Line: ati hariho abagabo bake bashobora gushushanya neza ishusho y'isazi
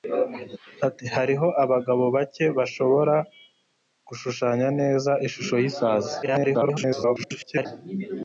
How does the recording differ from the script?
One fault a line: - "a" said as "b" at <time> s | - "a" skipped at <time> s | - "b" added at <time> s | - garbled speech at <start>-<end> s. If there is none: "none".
- garbled speech at 6.2-7.7 s